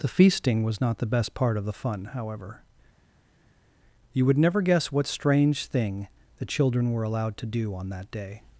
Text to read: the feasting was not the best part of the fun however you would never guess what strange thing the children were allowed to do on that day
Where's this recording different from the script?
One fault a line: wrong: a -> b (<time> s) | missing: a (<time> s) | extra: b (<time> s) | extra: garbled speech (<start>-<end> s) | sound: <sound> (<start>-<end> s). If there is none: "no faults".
no faults